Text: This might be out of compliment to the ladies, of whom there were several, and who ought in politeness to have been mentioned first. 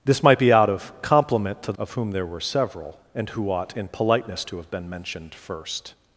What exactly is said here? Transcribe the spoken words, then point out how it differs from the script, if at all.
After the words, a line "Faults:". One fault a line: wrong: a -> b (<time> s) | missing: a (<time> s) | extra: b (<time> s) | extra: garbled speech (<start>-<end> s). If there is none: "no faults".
This might be out of compliment to of whom there were several, and who ought in politeness to have been mentioned first.
Faults:
missing: the ladies (1.7 s)